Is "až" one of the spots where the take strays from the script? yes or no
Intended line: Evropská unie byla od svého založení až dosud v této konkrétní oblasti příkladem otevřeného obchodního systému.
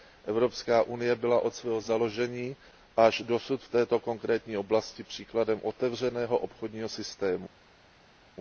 no